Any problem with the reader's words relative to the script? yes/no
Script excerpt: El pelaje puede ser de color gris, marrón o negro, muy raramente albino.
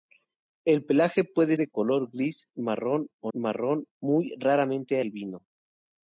yes